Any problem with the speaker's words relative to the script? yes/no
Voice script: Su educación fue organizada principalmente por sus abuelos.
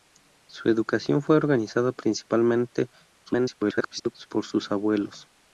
yes